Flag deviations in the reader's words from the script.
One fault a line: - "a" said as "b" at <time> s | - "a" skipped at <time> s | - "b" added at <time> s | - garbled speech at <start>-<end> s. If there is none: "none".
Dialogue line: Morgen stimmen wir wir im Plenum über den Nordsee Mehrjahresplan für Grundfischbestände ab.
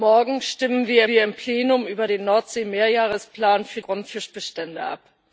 none